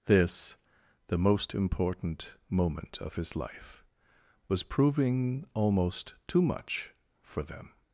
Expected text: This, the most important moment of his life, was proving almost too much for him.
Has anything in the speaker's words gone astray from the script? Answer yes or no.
yes